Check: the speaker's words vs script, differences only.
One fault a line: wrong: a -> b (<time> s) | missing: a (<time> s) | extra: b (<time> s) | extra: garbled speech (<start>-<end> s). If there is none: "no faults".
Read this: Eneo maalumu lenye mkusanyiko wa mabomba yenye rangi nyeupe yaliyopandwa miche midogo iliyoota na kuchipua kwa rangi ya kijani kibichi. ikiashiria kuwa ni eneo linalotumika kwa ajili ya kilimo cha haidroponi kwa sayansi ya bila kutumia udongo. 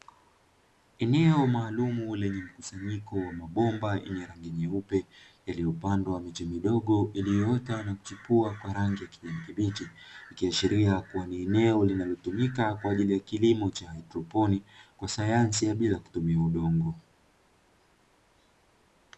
no faults